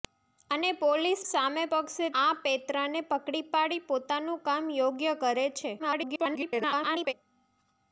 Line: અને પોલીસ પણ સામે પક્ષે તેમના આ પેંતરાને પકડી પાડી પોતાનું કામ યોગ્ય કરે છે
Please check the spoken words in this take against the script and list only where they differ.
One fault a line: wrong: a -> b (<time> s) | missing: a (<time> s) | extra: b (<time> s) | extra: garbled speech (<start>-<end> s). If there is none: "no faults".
missing: પણ (1.2 s)
missing: તેમના (2.1 s)
extra: garbled speech (5.8-7.1 s)